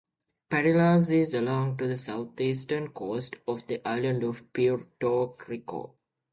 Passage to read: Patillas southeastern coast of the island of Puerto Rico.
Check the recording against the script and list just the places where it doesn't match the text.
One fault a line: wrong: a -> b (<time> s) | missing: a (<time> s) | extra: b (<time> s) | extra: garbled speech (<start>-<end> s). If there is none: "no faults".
extra: is along the (1.1 s)